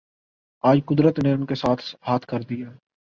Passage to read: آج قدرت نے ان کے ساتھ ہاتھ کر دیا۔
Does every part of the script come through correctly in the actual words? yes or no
yes